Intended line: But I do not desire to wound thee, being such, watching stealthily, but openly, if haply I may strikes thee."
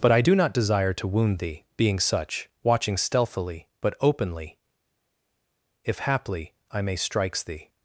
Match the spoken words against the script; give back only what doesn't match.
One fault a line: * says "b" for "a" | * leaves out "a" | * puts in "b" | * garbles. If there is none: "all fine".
all fine